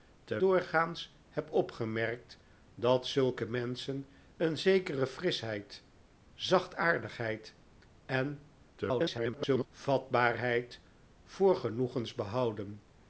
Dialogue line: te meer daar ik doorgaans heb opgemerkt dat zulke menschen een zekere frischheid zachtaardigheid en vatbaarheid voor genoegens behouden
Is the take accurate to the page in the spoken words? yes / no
no